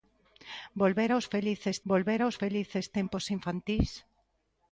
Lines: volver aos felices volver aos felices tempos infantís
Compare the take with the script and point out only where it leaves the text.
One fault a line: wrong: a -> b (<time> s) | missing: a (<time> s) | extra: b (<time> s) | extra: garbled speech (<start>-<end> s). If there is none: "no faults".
no faults